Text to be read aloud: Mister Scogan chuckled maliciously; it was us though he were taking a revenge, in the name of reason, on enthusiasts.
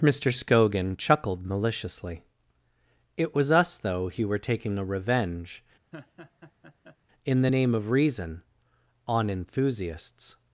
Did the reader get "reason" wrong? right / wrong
right